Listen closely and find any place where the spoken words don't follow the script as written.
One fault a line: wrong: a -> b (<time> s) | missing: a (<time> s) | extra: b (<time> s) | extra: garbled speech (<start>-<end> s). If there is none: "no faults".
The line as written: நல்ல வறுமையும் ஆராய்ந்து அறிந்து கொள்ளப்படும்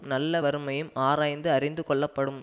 no faults